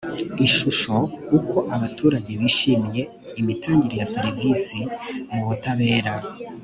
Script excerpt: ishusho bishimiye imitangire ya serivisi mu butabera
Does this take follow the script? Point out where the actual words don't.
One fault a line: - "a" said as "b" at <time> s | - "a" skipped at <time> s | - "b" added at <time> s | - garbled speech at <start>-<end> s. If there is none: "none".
- "uko abaturage" added at 1.4 s